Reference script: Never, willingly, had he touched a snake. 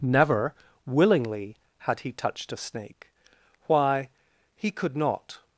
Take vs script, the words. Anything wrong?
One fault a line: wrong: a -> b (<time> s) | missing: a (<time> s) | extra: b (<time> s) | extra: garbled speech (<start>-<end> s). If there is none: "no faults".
extra: Why he could not (3.7 s)